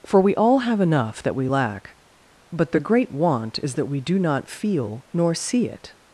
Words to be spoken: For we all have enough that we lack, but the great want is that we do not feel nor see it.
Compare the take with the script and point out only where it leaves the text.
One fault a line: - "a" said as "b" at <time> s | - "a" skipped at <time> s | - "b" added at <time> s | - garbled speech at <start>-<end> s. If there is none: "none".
none